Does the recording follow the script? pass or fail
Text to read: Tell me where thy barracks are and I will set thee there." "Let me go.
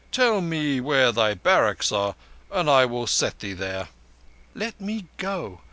pass